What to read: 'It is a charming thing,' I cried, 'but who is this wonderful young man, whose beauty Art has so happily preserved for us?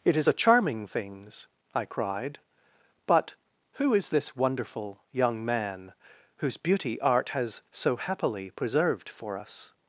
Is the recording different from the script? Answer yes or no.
yes